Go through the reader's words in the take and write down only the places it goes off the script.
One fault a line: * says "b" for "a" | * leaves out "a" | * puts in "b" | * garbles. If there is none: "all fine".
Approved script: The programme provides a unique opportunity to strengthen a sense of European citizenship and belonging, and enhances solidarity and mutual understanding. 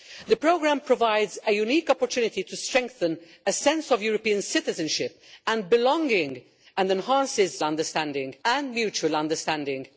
* says "understanding" for "solidarity"